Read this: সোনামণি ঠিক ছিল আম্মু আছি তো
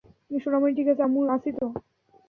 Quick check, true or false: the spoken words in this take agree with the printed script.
false